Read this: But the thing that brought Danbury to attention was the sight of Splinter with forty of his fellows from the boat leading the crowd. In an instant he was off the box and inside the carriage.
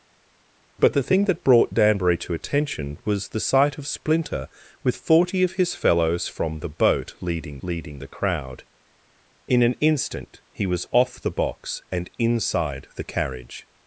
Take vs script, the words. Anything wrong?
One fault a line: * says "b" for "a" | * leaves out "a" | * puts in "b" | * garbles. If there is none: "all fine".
* puts in "leading"